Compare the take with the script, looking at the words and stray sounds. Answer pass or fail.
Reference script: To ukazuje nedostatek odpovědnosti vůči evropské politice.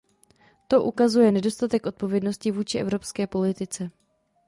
pass